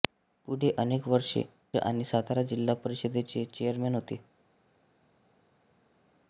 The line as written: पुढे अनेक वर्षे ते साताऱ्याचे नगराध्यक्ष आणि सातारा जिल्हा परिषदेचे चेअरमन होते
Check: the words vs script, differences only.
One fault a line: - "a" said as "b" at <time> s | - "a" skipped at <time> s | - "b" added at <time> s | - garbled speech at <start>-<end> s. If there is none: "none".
- "ते साताऱ्याचे नगराध्यक्ष" skipped at 1.4 s